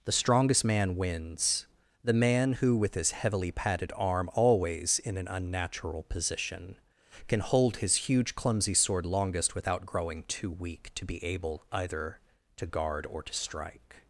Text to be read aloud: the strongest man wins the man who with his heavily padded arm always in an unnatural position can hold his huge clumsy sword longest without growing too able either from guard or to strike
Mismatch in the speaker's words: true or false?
true